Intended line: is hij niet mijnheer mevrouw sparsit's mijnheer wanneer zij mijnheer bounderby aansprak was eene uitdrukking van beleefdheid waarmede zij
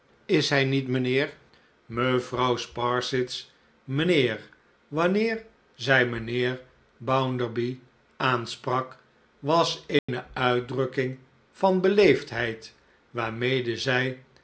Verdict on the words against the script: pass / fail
pass